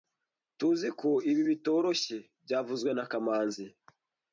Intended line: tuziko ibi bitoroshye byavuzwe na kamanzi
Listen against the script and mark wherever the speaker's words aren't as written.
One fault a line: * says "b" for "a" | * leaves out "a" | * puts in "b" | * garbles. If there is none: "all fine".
all fine